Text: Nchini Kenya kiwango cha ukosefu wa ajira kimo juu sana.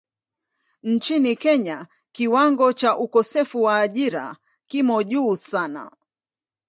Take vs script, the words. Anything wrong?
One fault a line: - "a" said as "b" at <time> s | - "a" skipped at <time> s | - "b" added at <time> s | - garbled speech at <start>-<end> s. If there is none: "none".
none